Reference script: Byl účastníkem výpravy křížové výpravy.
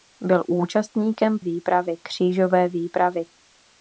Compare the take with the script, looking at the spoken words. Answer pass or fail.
pass